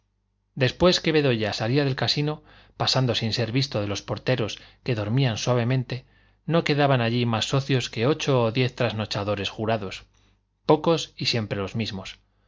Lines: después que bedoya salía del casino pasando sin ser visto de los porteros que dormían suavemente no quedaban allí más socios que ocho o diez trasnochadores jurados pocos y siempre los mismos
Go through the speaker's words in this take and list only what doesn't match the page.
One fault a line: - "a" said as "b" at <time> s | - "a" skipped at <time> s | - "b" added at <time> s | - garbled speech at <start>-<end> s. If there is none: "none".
none